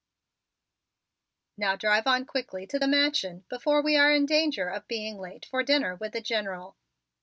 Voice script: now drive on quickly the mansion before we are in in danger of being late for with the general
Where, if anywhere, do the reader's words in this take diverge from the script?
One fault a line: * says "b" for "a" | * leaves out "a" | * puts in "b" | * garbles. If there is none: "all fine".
* puts in "to"
* leaves out "in"
* puts in "dinner"